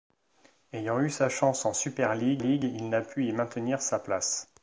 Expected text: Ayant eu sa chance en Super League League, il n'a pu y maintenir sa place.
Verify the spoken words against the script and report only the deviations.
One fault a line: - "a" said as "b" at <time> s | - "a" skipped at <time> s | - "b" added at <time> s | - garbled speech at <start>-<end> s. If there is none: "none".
none